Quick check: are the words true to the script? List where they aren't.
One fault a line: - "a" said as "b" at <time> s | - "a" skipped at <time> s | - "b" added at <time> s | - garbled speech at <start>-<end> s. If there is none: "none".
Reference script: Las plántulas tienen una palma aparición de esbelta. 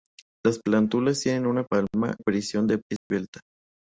none